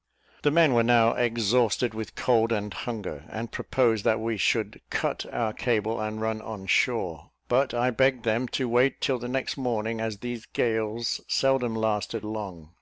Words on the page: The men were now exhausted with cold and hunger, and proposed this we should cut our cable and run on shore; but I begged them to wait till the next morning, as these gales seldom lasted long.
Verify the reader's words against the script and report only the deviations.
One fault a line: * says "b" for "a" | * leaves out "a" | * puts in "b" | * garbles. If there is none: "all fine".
* says "that" for "this"